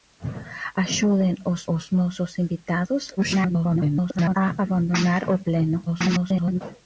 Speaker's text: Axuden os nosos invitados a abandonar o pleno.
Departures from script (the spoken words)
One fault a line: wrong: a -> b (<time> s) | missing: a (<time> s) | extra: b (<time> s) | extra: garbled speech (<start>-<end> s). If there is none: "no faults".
extra: os (1.7 s)
extra: garbled speech (3.2-4.4 s)
extra: garbled speech (5.9-6.6 s)